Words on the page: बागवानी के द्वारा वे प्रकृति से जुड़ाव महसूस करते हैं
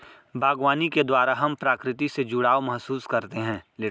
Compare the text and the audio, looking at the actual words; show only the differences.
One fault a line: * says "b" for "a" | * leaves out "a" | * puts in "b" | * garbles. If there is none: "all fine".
* says "हम" for "वे"